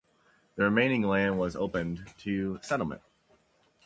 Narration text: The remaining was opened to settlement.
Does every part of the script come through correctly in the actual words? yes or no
no